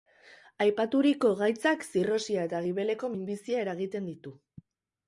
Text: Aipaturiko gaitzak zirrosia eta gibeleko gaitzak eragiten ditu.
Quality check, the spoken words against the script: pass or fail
fail